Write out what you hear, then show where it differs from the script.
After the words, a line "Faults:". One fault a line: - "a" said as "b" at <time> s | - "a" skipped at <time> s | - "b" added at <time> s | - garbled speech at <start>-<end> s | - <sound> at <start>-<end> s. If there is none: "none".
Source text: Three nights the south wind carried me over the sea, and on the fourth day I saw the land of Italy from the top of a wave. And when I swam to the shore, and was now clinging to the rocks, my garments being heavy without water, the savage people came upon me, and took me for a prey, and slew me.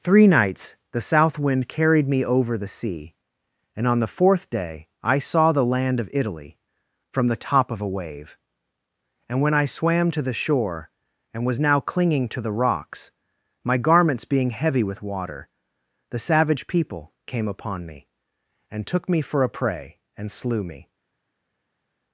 Three nights the south wind carried me over the sea, and on the fourth day I saw the land of Italy from the top of a wave. And when I swam to the shore, and was now clinging to the rocks, my garments being heavy with water, the savage people came upon me, and took me for a prey, and slew me.
Faults:
- "without" said as "with" at 14.8 s